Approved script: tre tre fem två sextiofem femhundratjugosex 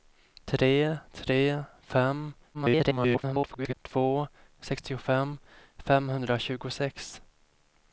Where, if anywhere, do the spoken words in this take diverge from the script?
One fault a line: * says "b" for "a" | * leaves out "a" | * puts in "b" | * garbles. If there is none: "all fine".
* garbles